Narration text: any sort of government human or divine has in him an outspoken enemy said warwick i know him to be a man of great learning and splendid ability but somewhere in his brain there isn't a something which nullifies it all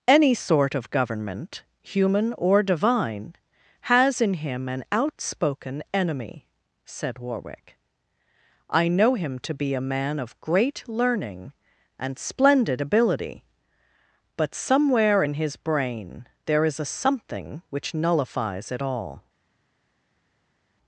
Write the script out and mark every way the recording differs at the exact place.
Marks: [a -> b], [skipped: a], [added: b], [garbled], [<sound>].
any sort of government human or divine has in him an outspoken enemy said warwick i know him to be a man of great learning and splendid ability but somewhere in his brain there [isn't -> is] a something which nullifies it all